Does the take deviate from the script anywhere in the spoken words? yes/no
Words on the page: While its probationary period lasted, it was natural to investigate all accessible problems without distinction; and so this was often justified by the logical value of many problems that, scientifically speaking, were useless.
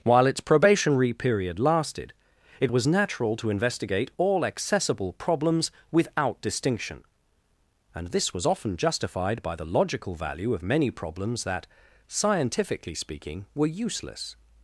yes